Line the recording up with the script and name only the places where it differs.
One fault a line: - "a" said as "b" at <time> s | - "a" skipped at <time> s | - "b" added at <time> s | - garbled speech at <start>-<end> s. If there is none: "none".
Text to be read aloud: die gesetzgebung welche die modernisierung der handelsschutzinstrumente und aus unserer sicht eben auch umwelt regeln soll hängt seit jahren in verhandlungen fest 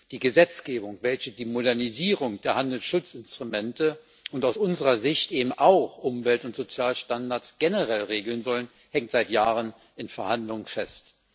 - "und sozialstandards generell" added at 6.4 s